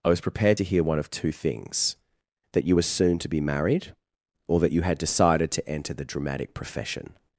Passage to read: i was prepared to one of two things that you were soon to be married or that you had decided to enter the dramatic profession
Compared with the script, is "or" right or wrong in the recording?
right